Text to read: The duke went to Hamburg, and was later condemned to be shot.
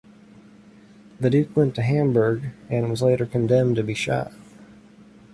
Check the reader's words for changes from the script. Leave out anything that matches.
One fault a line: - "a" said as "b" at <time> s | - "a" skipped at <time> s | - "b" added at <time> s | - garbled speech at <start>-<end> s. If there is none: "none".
none